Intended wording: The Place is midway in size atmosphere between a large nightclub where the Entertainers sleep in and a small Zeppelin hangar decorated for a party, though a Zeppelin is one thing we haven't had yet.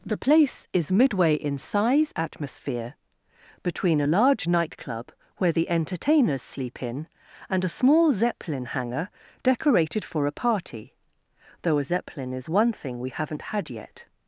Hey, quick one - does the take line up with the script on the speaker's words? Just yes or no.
yes